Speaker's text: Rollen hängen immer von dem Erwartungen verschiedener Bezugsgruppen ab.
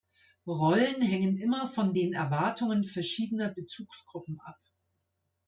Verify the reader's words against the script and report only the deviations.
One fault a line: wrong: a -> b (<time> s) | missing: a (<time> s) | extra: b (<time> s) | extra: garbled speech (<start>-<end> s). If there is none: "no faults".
wrong: dem -> den (1.9 s)